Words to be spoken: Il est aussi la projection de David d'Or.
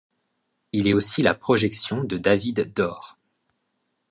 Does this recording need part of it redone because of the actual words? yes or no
no